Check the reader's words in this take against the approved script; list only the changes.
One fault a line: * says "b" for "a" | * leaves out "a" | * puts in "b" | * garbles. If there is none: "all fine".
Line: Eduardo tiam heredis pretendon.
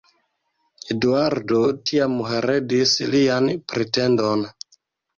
* puts in "lian"